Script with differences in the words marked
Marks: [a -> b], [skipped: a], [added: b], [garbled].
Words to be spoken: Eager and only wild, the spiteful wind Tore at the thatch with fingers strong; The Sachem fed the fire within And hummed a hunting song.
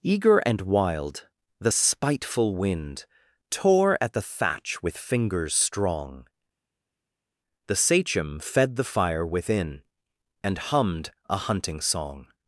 Eager and [skipped: only] wild, the spiteful wind Tore at the thatch with fingers strong; The Sachem fed the fire within And hummed a hunting song.